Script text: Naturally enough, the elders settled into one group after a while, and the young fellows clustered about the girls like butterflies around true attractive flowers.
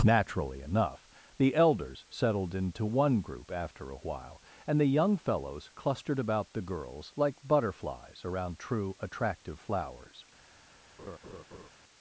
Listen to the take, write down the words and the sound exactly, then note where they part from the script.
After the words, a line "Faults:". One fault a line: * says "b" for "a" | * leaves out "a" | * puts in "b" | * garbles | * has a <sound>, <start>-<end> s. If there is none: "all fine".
Naturally enough, the elders settled into one group after a while, and the young fellows clustered about the girls like butterflies around true attractive flowers.
Faults:
* has a laugh, 11.0-11.7 s